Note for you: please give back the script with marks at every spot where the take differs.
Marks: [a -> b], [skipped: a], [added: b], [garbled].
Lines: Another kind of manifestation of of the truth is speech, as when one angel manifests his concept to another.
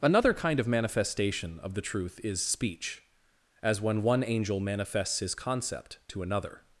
Another kind of manifestation of [skipped: of] the truth is speech, as when one angel manifests his concept to another.